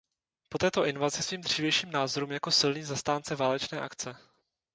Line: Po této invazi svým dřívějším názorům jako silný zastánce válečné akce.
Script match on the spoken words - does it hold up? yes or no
yes